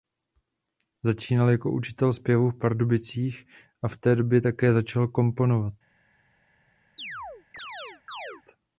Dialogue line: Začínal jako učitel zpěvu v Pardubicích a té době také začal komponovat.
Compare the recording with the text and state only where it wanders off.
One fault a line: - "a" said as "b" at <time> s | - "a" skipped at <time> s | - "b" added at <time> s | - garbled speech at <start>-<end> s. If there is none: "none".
- "v" added at 3.9 s